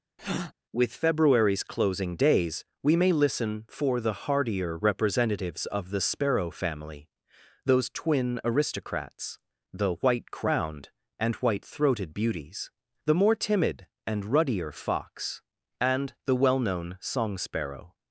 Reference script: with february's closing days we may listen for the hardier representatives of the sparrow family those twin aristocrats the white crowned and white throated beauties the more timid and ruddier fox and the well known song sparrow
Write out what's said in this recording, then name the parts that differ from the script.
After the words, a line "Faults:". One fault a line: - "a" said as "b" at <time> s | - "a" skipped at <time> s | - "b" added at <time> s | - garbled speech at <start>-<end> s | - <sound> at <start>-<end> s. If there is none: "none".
with february's closing days we may listen for the hardier representatives of the sparrow family those twin aristocrats the white crowned and white throated beauties the more timid and ruddier fox and the well known song sparrow
Faults:
- breath at 0.2-0.5 s